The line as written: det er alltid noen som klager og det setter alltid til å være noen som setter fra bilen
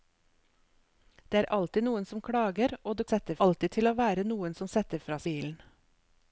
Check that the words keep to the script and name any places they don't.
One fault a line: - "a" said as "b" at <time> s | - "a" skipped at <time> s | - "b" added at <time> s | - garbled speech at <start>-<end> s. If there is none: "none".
none